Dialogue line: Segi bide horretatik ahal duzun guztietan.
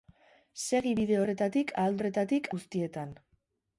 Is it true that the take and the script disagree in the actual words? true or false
true